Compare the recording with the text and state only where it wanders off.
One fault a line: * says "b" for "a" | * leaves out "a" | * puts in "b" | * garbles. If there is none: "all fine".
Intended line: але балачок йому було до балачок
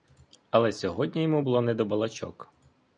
* says "сьогодні" for "балачок"
* puts in "не"